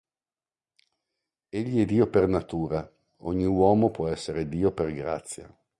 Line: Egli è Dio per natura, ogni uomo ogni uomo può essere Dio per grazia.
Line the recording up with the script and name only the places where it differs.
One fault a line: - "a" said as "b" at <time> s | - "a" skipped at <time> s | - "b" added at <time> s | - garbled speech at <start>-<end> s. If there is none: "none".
- "ogni uomo" skipped at 3.9 s